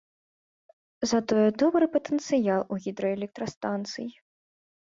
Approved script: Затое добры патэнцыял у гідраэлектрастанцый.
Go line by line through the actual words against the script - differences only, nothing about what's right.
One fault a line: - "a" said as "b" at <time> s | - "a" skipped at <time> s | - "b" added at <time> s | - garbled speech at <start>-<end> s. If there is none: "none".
none